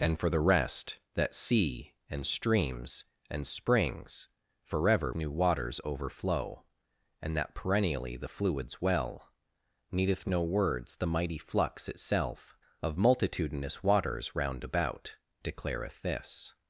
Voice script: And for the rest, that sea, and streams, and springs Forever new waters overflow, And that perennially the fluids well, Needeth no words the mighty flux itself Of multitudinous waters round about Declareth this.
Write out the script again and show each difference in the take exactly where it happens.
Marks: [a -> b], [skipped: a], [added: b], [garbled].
And for the rest, that sea, and streams, and springs Forever new waters overflow, And that perennially the fluids well, Needeth no words the mighty flux itself Of multitudinous waters round about Declareth this.